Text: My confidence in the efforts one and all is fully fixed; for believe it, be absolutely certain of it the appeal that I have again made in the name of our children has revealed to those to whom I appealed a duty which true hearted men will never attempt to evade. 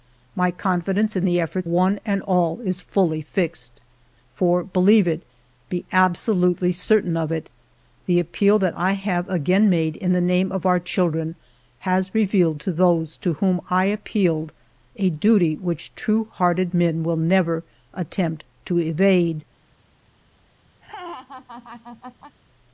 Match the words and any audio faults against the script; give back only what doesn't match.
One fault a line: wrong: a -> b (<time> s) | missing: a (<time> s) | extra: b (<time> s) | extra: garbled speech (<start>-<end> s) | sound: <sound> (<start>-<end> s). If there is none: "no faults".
sound: laugh (20.8-22.4 s)